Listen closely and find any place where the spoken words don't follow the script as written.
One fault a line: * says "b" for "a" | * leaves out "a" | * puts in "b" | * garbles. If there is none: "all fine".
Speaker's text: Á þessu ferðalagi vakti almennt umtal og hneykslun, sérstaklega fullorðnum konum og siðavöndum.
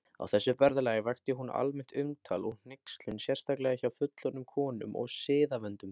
* puts in "hún"
* puts in "hjá"